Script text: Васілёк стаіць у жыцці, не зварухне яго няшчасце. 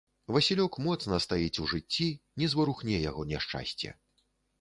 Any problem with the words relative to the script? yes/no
yes